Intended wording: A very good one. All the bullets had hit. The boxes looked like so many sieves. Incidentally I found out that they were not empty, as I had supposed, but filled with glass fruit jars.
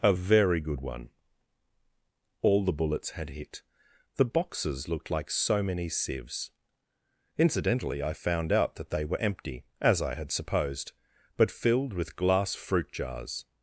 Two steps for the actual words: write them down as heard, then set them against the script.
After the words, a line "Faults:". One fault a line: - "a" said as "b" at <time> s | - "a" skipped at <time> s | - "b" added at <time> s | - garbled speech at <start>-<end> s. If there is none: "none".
A very good one. All the bullets had hit. The boxes looked like so many sieves. Incidentally I found out that they were empty, as I had supposed, but filled with glass fruit jars.
Faults:
- "not" skipped at 9.2 s